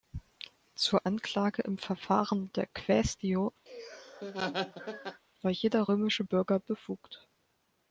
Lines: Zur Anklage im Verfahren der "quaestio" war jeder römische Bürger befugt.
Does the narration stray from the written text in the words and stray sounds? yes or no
yes